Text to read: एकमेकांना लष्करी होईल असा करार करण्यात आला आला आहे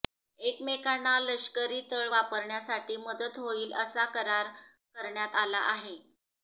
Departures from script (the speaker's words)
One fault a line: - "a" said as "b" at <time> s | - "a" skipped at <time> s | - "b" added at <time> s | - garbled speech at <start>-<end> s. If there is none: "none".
- "तळ वापरण्यासाठी मदत" added at 1.9 s
- "आला" skipped at 5.6 s